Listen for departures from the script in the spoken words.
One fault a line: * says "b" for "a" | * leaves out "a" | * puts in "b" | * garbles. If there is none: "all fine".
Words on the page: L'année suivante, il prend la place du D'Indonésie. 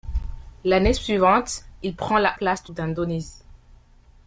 all fine